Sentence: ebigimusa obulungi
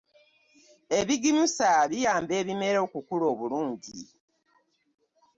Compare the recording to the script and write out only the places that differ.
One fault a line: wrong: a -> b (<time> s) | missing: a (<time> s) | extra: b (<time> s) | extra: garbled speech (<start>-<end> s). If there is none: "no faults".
extra: biyamba ebimera okukula (1.9 s)